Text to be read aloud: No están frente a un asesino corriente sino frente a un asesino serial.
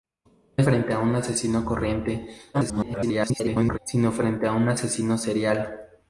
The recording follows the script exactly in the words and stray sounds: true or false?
false